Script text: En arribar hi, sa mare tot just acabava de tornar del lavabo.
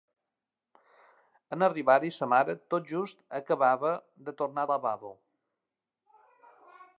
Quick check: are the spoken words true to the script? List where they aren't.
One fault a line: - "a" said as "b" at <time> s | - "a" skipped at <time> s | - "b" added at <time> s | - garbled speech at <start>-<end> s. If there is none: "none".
- "del" skipped at 4.7 s